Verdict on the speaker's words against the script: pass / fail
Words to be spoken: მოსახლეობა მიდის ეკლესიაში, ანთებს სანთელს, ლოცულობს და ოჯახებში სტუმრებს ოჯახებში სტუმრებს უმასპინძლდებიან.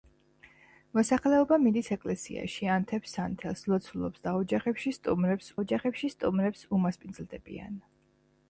pass